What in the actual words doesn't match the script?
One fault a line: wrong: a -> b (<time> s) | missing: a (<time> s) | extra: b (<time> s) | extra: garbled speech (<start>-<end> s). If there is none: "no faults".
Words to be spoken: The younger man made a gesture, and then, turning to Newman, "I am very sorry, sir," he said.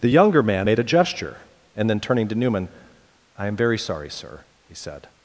no faults